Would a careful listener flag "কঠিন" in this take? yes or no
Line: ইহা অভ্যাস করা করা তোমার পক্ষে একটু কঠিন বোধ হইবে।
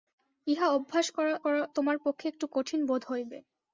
no